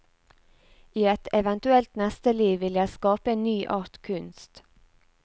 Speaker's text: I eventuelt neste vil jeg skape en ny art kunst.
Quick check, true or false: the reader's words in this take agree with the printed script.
false